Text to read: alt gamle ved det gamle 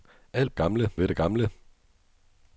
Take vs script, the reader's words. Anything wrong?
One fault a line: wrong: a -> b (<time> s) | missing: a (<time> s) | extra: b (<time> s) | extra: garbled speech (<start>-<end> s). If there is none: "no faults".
no faults